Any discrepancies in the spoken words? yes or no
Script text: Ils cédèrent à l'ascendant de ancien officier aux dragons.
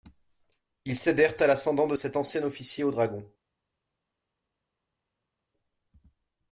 yes